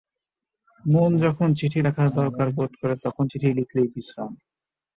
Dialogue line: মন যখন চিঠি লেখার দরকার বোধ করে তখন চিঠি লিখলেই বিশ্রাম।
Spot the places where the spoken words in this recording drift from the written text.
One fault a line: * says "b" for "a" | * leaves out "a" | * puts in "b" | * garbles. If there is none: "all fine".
all fine